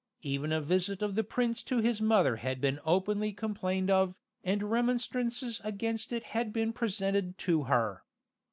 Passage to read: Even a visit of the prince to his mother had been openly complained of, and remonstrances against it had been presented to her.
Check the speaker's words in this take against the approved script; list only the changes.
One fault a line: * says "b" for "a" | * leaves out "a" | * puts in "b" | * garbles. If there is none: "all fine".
all fine